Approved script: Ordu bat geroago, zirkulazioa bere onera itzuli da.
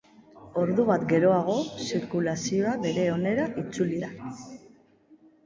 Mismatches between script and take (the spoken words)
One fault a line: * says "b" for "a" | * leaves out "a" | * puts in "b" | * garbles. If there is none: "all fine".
all fine